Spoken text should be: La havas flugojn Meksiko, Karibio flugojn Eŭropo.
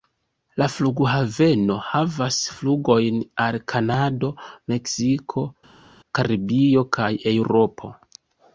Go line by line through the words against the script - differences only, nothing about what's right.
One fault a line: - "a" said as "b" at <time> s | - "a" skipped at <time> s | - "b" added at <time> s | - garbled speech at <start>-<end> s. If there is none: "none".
- "flughaveno" added at 0.8 s
- "al Kanado" added at 3.5 s
- "flugojn" said as "kaj" at 7.0 s